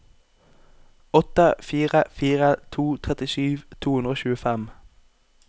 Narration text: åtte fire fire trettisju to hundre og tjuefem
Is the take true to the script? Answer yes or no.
no